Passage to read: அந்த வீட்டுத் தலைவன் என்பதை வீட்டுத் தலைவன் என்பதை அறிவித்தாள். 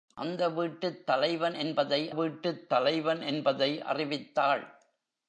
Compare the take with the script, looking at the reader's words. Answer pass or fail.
pass